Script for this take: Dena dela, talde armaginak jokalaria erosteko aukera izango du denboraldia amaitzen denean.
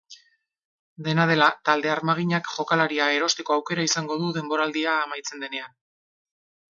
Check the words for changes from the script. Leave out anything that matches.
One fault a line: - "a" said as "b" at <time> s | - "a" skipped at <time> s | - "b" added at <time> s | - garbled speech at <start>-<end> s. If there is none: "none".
none